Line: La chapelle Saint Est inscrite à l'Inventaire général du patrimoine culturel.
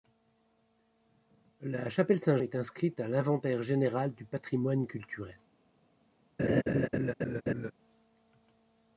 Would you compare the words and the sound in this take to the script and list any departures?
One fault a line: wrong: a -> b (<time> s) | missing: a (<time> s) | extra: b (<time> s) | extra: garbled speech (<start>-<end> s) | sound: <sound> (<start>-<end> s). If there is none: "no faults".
sound: laugh (6.4-7.7 s)